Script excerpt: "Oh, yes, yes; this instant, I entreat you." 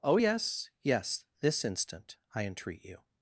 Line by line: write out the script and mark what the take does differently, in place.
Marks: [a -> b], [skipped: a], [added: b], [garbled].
"Oh, yes, yes; this instant, I entreat you."